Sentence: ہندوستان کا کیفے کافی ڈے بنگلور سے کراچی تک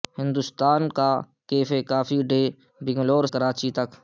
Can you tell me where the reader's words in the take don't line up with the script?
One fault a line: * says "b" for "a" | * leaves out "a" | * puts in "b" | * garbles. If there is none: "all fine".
* leaves out "سے"